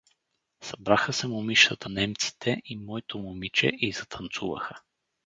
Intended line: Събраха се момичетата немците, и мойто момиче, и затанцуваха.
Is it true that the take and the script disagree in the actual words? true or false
false